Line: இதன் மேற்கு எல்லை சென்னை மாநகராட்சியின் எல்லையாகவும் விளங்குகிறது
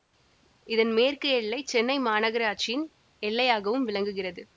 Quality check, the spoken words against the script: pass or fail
pass